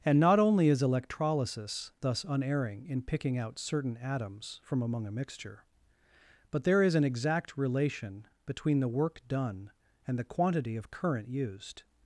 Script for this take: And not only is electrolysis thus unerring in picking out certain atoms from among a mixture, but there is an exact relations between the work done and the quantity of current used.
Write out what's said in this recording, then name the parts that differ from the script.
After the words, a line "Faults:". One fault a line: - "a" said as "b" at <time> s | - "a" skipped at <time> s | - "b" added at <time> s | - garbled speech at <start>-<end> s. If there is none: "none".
And not only is electrolysis thus unerring in picking out certain atoms from among a mixture, but there is an exact relation between the work done and the quantity of current used.
Faults:
- "relations" said as "relation" at 7.6 s